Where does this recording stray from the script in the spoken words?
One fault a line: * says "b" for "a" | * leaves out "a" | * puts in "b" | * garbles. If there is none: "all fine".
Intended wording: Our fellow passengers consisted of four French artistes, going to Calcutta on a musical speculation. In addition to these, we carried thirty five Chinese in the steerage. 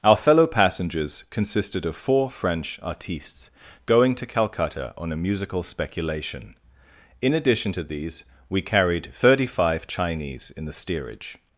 all fine